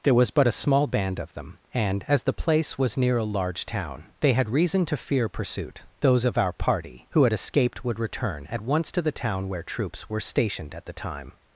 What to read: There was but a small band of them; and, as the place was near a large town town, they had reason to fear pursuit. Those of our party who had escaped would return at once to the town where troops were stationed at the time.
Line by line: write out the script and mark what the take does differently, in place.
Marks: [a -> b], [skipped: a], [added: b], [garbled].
There was but a small band of them; and, as the place was near a large town [skipped: town,] they had reason to fear pursuit. Those of our party who had escaped would return at once to the town where troops were stationed at the time.